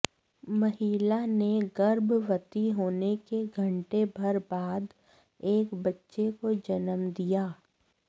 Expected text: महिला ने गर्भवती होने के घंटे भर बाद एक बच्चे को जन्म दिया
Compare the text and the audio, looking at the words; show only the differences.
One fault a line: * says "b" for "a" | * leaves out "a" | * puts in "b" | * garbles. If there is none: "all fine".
all fine